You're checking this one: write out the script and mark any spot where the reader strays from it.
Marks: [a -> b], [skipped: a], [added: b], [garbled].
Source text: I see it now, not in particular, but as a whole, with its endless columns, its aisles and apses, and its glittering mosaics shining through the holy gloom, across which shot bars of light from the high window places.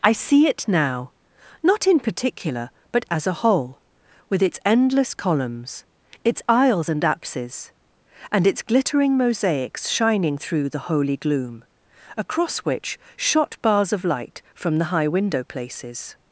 I see it now, not in particular, but as a whole, with its endless columns, its aisles and apses, and its glittering mosaics shining through the holy gloom, across which shot bars of light from the high window places.